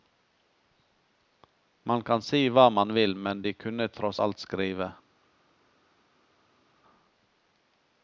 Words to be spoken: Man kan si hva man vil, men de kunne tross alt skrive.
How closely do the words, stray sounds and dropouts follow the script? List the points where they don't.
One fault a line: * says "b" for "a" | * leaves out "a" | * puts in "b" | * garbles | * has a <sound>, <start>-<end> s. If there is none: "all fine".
all fine